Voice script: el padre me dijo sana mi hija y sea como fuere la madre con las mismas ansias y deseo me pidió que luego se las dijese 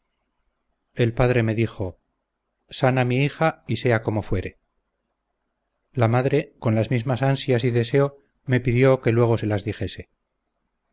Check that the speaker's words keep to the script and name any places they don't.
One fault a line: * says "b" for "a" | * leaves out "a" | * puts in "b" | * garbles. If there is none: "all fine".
all fine